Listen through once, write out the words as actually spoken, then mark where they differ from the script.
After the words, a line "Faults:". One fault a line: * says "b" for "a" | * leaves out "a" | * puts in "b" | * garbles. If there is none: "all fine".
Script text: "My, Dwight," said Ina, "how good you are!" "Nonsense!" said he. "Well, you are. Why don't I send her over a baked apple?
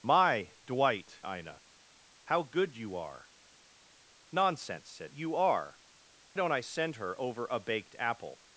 "My, Dwight," Ina, "how good you are!" "Nonsense!" said you are. Don't I send her over a baked apple?
Faults:
* leaves out "said"
* leaves out "he Well"
* leaves out "Why"